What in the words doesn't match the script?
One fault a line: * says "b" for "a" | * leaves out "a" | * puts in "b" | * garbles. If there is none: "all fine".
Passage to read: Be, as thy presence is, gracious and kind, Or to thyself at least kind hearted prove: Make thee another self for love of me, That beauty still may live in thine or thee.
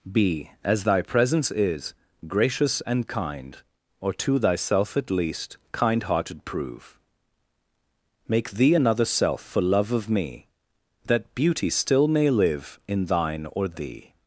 all fine